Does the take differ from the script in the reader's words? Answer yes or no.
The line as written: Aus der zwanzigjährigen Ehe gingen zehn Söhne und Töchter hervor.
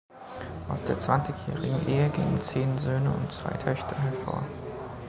yes